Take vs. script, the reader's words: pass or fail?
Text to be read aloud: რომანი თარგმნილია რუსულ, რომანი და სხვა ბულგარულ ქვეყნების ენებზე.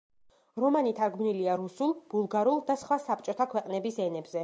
fail